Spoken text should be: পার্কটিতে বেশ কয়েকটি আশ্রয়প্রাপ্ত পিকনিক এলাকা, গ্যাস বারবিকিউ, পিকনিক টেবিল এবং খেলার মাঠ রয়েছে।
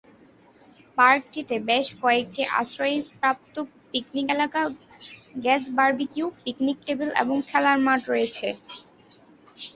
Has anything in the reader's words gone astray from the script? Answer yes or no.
no